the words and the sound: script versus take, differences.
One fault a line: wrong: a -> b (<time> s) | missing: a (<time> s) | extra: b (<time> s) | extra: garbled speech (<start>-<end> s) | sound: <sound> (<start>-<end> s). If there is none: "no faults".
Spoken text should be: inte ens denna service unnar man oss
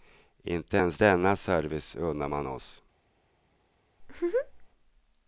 sound: laugh (4.0-4.7 s)